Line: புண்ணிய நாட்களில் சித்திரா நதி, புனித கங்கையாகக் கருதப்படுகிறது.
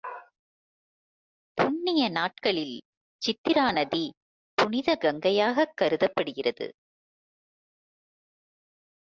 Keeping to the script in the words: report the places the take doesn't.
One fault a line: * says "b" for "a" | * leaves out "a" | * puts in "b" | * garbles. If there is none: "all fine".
all fine